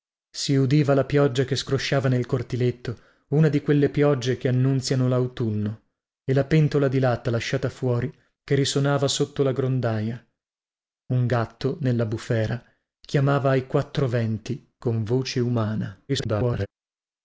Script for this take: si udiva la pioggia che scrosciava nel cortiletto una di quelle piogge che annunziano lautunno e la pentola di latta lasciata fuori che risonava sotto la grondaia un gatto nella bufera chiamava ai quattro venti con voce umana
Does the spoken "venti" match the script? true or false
true